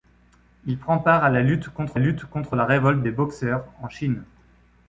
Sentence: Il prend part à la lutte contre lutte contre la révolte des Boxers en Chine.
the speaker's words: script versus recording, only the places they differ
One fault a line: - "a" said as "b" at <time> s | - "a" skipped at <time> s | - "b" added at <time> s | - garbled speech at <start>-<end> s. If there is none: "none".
none